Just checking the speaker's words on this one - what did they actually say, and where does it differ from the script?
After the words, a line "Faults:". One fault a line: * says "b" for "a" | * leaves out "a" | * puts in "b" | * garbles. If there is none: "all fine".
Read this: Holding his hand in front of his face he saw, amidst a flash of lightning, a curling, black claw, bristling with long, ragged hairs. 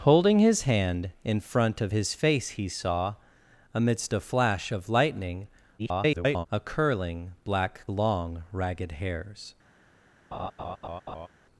Holding his hand in front of his face he saw, amidst a flash of lightning, [garbled] a curling, black long, ragged hairs.
Faults:
* garbles
* leaves out "claw bristling with"